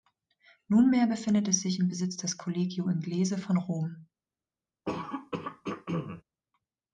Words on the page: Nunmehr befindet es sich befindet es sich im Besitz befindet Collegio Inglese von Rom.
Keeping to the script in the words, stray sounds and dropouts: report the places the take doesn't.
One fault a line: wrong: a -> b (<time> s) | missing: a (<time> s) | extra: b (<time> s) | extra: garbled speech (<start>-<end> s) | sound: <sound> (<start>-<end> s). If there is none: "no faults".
missing: befindet es sich (1.8 s)
wrong: befindet -> des (2.2 s)
sound: throat clearing (4.9-6.2 s)